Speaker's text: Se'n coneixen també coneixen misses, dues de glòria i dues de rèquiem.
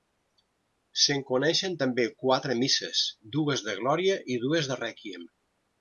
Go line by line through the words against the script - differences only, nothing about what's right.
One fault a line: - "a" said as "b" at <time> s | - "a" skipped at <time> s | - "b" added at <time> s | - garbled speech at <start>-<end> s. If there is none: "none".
- "coneixen" said as "quatre" at 2.2 s